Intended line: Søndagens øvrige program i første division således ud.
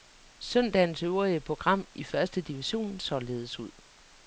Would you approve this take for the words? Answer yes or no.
yes